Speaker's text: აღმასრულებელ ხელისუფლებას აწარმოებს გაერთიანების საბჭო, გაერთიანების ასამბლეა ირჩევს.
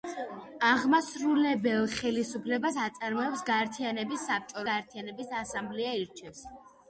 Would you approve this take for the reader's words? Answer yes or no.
yes